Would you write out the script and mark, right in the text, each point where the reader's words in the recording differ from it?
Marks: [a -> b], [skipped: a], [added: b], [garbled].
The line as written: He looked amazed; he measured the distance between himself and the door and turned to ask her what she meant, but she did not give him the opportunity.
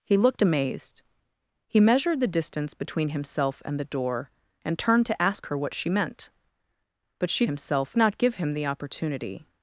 He looked amazed; he measured the distance between himself and the door and turned to ask her what she meant, but she [did -> himself] not give him the opportunity.